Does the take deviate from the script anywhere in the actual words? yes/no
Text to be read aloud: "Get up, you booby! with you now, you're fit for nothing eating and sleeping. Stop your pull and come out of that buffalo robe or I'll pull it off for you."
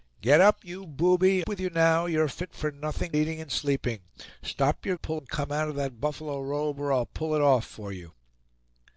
no